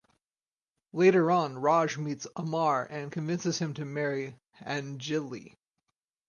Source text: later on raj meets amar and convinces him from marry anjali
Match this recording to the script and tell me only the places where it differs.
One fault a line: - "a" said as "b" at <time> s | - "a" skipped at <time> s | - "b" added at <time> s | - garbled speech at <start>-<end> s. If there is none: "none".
- "from" said as "to" at 3.7 s